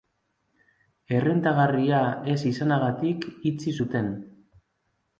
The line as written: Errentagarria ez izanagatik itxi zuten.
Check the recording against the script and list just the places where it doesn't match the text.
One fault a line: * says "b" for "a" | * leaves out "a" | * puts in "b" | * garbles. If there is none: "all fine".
all fine